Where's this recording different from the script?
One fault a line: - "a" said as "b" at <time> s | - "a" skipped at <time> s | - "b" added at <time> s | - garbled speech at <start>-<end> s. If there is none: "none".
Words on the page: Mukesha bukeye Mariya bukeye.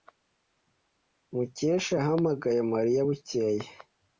- "bukeye" said as "yahamagaye" at 2.0 s